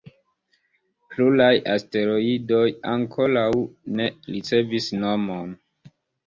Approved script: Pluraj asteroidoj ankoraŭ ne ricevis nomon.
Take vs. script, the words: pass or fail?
pass